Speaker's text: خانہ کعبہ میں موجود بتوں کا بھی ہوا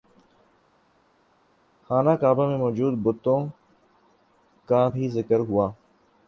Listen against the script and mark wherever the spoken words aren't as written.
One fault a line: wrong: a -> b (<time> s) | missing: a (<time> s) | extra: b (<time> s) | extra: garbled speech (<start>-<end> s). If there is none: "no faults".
extra: ذکر (5.1 s)